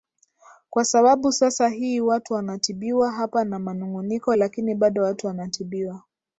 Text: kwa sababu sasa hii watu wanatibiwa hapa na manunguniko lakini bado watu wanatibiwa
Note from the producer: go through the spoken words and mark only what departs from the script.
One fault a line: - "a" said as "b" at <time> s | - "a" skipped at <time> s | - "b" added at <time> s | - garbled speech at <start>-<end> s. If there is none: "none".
none